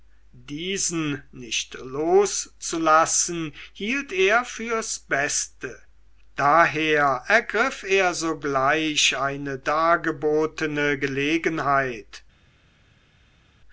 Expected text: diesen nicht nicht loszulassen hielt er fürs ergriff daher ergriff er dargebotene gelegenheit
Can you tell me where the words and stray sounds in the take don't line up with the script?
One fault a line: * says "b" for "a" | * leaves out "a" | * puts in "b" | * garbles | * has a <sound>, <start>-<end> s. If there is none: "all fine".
* leaves out "nicht"
* says "beste" for "ergriff"
* puts in "sogleich eine"